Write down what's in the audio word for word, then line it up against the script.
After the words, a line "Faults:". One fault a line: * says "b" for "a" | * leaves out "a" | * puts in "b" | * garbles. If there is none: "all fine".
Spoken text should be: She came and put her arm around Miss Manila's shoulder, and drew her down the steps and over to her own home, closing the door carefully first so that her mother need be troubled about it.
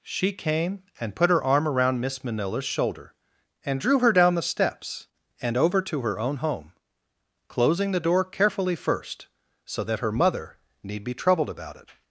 She came and put her arm around Miss Manila's shoulder, and drew her down the steps and over to her own home, closing the door carefully first so that her mother need be troubled about it.
Faults:
all fine